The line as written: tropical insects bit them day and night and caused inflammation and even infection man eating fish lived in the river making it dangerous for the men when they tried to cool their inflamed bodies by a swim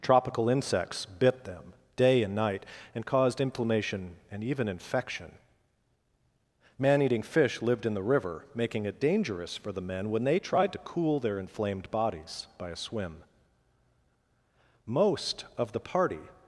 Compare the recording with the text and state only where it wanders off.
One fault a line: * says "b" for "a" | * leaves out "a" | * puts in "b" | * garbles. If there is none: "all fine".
* puts in "most of the party"